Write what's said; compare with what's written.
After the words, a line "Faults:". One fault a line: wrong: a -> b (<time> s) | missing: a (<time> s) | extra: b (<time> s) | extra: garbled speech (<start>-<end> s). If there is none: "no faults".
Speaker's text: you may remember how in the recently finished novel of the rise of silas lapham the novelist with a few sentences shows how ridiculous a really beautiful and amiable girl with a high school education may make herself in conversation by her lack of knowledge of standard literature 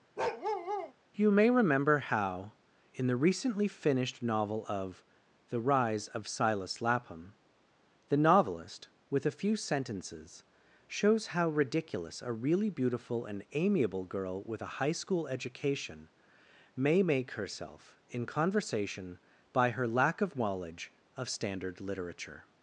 you may remember how in the recently finished novel of the rise of silas lapham the novelist with a few sentences shows how ridiculous a really beautiful and amiable girl with a high school education may make herself in conversation by her lack of knowledge of standard literature
Faults:
no faults